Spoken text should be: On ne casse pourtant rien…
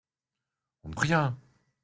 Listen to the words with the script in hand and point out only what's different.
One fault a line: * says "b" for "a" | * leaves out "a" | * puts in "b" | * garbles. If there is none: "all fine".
* leaves out "casse pourtant"